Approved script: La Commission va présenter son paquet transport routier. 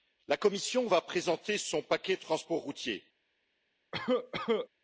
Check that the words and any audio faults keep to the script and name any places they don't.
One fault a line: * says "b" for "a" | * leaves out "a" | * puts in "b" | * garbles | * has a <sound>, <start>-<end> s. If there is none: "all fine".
* has a cough, 3.9-4.7 s